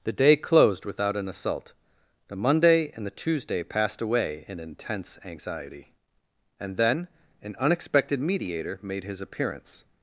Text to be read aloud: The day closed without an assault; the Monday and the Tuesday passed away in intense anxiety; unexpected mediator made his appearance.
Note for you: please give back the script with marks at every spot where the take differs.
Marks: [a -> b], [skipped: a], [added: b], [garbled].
The day closed without an assault; the Monday and the Tuesday passed away in intense anxiety; [added: and then an] unexpected mediator made his appearance.